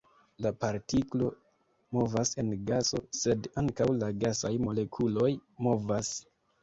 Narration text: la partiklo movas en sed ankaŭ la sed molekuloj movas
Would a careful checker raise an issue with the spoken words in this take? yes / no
yes